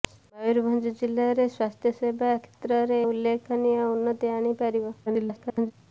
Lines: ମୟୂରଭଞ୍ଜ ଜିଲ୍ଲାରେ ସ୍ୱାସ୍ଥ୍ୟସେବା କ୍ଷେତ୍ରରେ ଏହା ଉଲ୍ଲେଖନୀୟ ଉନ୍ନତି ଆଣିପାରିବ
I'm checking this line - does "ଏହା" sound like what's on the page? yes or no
no